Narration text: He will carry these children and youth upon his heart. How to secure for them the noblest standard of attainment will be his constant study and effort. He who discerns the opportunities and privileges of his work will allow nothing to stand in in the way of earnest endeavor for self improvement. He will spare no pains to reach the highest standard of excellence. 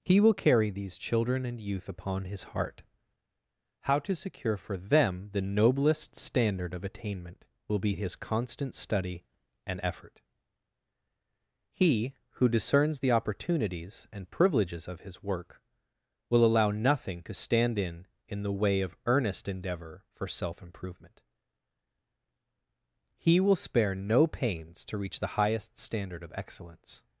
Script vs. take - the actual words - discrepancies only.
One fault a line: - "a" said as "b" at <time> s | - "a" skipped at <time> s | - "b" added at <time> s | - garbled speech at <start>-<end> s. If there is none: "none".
none